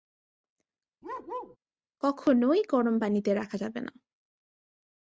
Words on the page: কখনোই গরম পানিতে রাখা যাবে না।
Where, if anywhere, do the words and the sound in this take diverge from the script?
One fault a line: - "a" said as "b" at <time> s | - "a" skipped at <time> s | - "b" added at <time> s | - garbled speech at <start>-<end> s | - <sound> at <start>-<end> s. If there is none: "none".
- bark at 1.0-1.6 s